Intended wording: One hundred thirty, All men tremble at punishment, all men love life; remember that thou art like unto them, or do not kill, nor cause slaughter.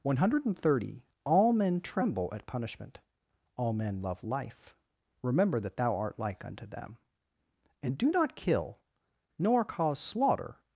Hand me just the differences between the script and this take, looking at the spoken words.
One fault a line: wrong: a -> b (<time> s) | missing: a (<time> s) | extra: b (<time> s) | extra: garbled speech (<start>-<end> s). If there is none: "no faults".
wrong: or -> and (7.8 s)